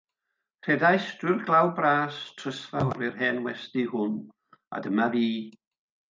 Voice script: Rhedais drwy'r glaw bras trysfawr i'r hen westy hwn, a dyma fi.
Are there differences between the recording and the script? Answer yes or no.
no